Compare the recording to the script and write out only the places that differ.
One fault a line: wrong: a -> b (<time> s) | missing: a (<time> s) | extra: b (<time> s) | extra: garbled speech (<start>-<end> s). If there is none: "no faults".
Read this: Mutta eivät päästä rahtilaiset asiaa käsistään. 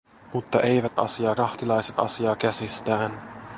wrong: päästä -> asiaa (1.0 s)